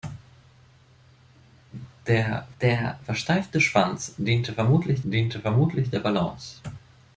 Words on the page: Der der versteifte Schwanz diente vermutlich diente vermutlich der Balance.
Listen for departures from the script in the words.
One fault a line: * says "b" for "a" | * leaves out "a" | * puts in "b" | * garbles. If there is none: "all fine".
all fine